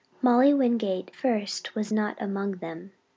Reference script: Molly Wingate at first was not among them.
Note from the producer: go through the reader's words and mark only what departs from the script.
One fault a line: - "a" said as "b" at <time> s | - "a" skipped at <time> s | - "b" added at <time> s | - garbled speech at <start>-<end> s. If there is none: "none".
- "at" skipped at 1.1 s